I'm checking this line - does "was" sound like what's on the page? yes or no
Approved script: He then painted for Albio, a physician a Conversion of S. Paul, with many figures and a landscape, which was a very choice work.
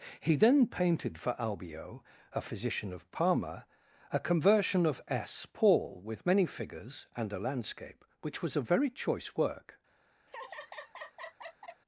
yes